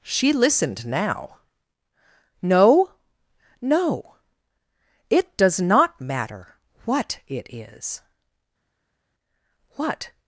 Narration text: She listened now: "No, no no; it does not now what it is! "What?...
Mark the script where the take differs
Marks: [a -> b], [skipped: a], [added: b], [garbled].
She listened now: "No, no [skipped: no;] it does not [now -> matter] what it is! "What?...